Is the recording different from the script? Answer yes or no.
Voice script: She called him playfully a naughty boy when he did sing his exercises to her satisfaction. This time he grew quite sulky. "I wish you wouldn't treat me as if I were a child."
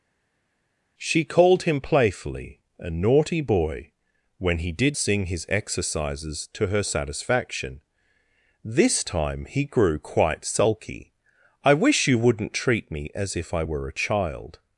no